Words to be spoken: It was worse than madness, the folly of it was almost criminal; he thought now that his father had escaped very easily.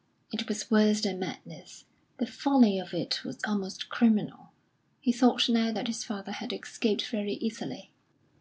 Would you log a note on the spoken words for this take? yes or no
no